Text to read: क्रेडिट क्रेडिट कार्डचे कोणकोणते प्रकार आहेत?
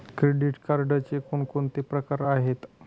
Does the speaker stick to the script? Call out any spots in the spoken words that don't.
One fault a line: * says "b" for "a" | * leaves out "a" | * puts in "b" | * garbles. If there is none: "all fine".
* leaves out "क्रेडिट"